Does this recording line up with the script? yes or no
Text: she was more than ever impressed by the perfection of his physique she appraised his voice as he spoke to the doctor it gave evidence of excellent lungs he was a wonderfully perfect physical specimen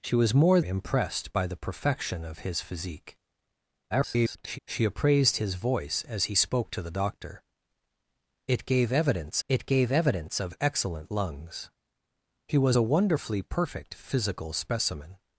no